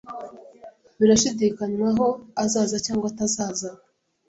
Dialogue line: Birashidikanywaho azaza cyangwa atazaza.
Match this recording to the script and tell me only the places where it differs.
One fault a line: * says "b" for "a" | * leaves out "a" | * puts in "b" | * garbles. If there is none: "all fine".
all fine